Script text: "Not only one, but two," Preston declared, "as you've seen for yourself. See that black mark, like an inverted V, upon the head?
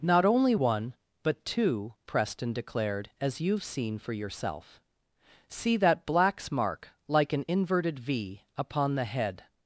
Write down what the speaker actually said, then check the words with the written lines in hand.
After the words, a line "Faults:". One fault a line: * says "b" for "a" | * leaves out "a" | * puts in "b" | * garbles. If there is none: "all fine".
"Not only one, but two," Preston declared, "as you've seen for yourself. See that blacks mark, like an inverted V, upon the head?
Faults:
* says "blacks" for "black"